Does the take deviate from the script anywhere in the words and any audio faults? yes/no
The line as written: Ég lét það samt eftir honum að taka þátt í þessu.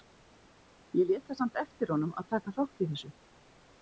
no